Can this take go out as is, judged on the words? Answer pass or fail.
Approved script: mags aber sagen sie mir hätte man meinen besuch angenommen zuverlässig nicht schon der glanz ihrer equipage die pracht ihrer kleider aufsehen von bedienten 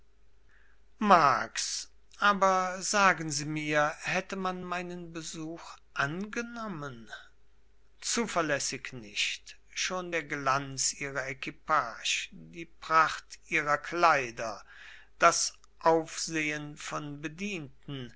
fail